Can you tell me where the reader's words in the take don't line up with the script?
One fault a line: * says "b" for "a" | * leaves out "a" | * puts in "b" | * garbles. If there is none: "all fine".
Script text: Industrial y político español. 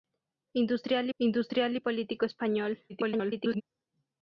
* puts in "industrial"
* garbles